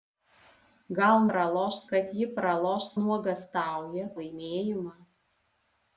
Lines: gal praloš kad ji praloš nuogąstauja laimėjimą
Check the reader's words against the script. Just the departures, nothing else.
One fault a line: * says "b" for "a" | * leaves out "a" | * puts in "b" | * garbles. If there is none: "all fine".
all fine